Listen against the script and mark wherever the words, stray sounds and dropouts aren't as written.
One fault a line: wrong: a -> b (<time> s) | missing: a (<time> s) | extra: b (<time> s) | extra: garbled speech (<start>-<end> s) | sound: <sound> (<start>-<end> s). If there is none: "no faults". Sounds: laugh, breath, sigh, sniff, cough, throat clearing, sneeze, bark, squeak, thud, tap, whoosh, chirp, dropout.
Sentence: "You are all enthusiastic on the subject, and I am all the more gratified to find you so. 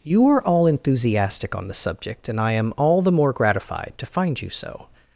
no faults